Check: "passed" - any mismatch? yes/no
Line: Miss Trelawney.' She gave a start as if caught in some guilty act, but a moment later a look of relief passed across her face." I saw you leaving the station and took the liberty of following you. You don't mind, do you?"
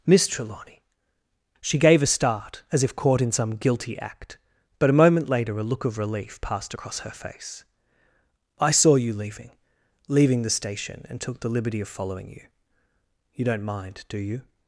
no